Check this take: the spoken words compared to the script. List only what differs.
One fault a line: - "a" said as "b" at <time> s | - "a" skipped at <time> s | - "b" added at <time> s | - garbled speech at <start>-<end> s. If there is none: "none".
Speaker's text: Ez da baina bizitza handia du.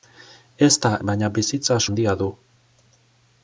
none